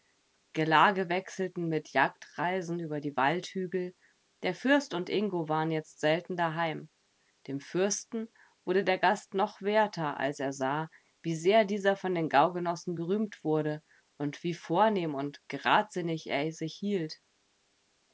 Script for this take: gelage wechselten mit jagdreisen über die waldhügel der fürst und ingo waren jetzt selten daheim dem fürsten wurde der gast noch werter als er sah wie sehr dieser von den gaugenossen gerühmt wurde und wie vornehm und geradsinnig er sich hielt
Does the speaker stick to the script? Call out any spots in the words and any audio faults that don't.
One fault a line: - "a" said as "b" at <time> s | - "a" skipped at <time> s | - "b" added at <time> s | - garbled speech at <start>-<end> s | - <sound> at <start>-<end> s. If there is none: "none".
none